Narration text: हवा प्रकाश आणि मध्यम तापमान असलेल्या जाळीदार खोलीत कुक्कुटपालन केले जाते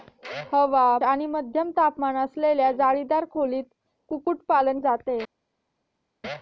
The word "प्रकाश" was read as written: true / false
false